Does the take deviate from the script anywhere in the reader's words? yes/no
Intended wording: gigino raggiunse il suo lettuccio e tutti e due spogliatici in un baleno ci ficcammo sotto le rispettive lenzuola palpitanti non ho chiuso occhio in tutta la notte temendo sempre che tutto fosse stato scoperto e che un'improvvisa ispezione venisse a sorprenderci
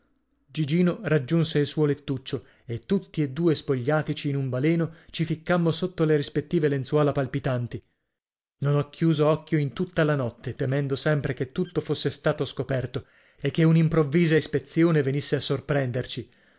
no